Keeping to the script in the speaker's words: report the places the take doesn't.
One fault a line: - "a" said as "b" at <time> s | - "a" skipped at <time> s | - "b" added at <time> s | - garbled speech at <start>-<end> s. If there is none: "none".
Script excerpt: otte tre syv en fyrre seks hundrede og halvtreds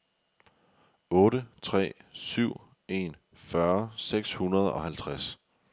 none